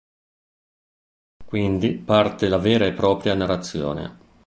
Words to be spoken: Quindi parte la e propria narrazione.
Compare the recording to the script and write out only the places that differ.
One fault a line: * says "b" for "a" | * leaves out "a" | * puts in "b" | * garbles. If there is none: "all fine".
* puts in "vera"